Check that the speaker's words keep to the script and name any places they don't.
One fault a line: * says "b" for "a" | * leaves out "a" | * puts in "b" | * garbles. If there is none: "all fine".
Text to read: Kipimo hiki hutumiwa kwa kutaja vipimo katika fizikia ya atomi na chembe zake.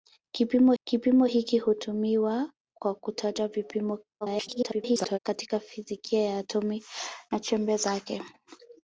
* puts in "kipimo"
* garbles